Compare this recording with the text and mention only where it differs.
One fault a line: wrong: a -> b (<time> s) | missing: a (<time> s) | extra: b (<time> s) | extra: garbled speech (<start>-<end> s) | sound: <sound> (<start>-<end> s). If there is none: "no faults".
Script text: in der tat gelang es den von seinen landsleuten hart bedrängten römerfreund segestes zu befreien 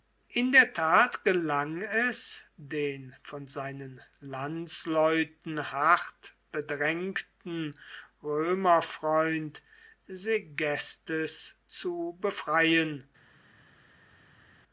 no faults